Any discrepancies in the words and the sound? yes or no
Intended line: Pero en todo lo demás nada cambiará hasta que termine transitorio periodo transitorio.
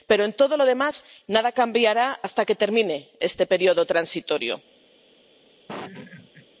yes